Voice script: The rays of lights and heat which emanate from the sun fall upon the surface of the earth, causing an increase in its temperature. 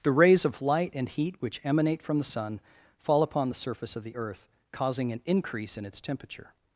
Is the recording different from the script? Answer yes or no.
yes